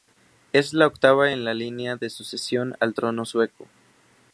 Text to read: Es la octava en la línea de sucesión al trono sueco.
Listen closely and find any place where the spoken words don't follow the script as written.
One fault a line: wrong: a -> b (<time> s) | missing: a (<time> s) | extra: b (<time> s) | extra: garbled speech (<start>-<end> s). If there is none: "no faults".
no faults